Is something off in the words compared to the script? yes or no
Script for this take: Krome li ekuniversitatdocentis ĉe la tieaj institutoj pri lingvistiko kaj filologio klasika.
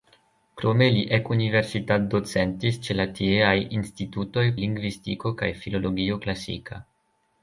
yes